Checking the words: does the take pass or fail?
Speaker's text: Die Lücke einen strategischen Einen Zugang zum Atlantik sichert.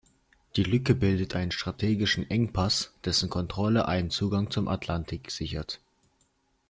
fail